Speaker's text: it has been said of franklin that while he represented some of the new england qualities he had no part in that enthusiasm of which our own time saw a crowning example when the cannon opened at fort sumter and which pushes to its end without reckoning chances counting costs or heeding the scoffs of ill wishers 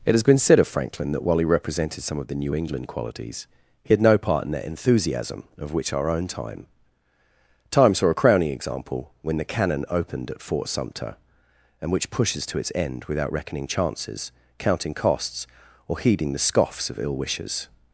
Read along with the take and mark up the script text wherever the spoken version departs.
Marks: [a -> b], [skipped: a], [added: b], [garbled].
it has been said of franklin that while he represented some of the new england qualities he had no part in that enthusiasm of which our own time [added: time] saw a crowning example when the cannon opened at fort sumter and which pushes to its end without reckoning chances counting costs or heeding the scoffs of ill wishers